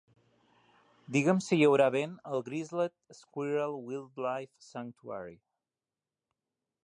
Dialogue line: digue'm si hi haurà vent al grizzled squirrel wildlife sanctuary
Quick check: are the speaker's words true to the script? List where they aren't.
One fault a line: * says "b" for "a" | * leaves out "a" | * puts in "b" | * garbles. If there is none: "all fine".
all fine